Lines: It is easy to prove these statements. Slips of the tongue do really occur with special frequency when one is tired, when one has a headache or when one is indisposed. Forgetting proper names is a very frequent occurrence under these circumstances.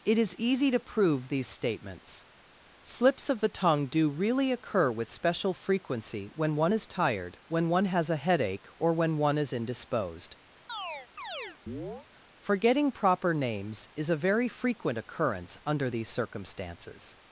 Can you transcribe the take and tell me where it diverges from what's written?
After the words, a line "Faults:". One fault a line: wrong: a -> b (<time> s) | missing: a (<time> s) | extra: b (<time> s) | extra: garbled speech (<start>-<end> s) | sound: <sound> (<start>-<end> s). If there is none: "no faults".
It is easy to prove these statements. Slips of the tongue do really occur with special frequency when one is tired, when one has a headache or when one is indisposed. Forgetting proper names is a very frequent occurrence under these circumstances.
Faults:
sound: chirp (10.7-12.1 s)